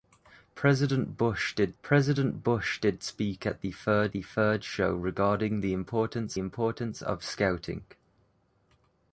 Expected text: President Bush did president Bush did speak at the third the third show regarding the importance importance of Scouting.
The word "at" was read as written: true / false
true